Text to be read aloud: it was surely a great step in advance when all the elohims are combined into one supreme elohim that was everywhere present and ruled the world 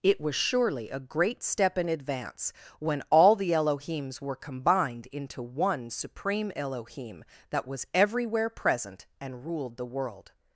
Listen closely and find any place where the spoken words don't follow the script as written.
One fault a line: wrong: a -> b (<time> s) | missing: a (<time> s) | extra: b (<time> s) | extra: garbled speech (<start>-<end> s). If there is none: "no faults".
wrong: are -> were (4.2 s)